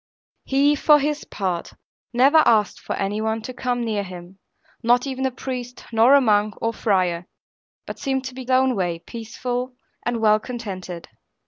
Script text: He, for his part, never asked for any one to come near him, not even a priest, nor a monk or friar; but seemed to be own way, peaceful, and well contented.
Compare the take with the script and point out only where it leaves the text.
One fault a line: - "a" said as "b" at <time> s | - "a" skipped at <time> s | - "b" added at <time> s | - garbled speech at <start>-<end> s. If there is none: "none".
none